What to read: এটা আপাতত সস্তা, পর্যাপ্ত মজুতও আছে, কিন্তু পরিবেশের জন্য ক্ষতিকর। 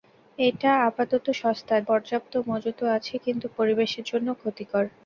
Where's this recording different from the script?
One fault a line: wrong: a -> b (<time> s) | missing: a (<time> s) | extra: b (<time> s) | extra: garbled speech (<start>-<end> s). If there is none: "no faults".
no faults